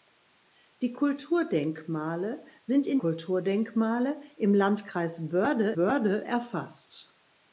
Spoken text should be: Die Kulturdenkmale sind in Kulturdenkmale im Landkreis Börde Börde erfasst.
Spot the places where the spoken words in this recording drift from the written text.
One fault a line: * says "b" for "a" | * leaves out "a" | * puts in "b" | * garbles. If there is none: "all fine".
all fine